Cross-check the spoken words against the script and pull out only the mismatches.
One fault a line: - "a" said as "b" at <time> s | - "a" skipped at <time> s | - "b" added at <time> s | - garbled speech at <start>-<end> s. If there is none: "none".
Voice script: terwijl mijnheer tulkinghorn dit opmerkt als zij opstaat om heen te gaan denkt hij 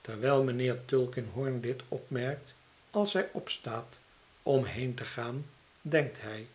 none